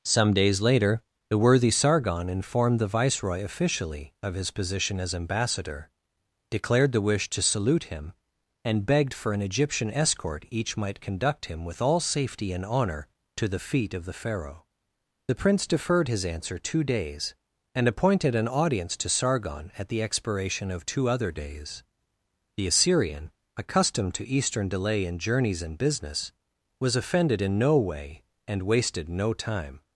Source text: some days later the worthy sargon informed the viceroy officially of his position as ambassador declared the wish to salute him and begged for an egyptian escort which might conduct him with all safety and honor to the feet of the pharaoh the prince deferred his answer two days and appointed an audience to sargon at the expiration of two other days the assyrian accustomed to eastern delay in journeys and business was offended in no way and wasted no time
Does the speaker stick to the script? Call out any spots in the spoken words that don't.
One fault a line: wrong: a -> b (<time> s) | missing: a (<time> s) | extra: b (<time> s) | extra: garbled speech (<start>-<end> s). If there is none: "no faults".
wrong: which -> each (10.5 s)